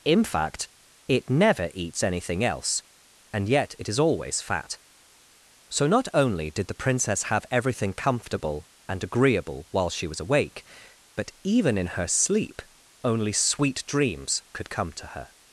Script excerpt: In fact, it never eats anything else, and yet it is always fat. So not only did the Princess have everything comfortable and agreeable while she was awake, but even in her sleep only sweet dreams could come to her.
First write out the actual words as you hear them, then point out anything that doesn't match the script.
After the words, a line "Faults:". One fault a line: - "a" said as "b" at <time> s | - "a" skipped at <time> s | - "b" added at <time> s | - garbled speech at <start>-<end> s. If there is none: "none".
In fact, it never eats anything else, and yet it is always fat. So not only did the Princess have everything comfortable and agreeable while she was awake, but even in her sleep only sweet dreams could come to her.
Faults:
none